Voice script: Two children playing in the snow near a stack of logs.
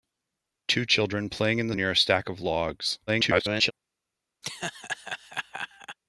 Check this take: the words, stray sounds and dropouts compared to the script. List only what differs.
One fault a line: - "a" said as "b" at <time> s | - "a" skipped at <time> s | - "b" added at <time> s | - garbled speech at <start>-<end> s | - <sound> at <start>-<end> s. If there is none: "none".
- "snow" skipped at 1.8 s
- garbled speech at 3.1-3.7 s
- laugh at 4.4-6.0 s